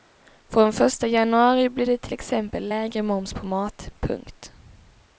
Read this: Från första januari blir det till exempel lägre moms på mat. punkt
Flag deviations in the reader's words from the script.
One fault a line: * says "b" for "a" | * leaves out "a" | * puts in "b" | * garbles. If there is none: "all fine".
all fine